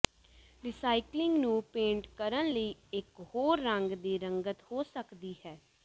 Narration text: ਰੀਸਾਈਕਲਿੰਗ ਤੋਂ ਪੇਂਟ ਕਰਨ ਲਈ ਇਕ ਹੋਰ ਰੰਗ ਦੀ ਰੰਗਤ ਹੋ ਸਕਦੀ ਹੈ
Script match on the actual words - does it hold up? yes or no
no